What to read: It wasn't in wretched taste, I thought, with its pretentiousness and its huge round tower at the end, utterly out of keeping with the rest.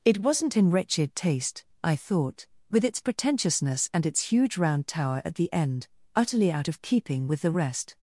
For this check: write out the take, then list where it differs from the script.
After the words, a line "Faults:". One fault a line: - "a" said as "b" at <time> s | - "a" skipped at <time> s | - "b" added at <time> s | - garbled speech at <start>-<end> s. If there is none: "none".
It wasn't in wretched taste, I thought, with its pretentiousness and its huge round tower at the end, utterly out of keeping with the rest.
Faults:
none